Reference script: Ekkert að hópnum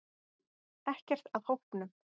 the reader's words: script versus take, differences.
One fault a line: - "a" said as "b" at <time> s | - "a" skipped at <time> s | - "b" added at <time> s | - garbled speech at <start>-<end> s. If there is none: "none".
none